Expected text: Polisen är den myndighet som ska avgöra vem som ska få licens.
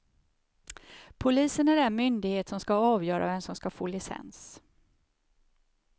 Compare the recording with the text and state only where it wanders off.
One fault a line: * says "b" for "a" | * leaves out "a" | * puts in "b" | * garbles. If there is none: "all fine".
all fine